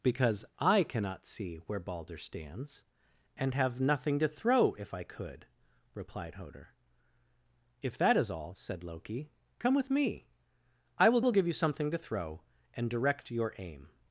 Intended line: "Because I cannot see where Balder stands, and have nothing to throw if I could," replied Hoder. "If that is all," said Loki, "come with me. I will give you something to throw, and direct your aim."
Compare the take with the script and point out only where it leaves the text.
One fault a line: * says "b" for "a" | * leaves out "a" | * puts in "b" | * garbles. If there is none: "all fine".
* puts in "will"